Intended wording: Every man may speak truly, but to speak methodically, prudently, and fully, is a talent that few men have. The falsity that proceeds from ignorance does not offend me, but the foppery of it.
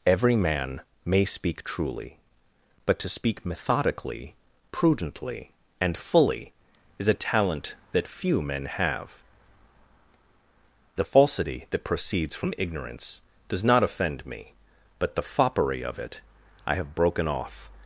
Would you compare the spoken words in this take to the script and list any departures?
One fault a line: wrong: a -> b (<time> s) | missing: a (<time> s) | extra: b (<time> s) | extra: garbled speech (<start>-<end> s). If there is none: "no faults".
extra: I have broken off (16.7 s)